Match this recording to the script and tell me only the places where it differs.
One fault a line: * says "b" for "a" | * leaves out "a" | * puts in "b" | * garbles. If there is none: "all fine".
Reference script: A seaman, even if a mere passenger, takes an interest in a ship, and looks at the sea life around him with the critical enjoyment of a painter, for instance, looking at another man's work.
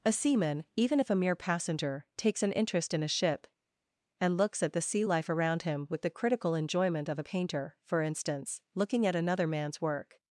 all fine